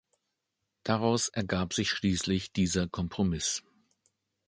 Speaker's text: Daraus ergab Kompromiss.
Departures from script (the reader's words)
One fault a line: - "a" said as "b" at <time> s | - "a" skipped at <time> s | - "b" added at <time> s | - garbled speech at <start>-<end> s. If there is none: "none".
- "sich schließlich dieser" added at 1.7 s